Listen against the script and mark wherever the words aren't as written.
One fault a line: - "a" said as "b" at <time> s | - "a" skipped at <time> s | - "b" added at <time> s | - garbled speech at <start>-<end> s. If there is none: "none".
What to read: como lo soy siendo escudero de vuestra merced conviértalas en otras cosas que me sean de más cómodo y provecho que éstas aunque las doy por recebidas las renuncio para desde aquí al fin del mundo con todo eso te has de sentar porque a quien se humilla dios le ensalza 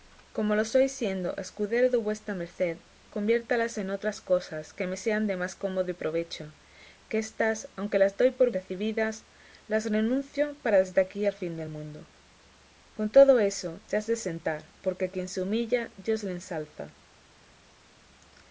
none